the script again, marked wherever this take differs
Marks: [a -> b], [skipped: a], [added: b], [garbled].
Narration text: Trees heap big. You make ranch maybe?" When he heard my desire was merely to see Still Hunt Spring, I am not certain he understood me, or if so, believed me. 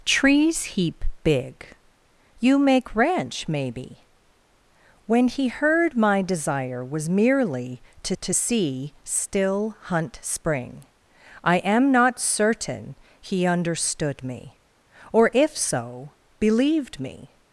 Trees heap big. You make ranch maybe?" When he heard my desire was merely to [added: to] see Still Hunt Spring, I am not certain he understood me, or if so, believed me.